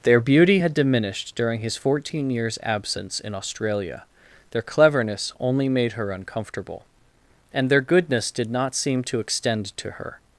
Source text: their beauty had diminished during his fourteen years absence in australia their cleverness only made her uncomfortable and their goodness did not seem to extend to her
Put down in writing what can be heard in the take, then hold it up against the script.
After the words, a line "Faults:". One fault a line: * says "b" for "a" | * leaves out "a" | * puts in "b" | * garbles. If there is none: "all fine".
their beauty had diminished during his fourteen years absence in australia their cleverness only made her uncomfortable and their goodness did not seem to extend to her
Faults:
all fine